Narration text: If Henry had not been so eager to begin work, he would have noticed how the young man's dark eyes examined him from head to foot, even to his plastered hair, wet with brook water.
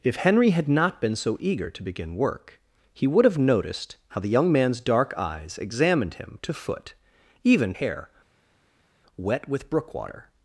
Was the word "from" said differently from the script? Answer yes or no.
yes